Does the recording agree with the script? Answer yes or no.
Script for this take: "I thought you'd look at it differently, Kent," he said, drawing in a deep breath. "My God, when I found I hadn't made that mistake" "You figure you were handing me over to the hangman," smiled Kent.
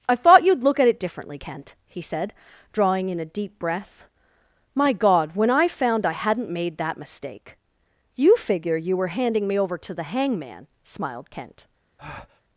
yes